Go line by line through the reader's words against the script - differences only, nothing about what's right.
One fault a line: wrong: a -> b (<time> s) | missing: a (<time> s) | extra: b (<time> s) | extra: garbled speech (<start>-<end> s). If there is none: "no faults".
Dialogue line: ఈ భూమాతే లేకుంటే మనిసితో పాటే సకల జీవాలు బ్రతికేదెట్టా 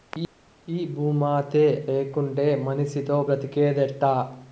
missing: పాటే సకల జీవాలు (3.2 s)